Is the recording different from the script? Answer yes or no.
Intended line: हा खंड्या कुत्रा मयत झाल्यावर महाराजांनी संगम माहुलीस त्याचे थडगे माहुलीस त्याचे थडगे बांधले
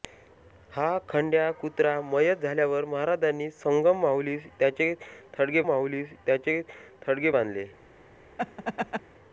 no